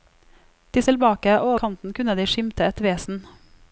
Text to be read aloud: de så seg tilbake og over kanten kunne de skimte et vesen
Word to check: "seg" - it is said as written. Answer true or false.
false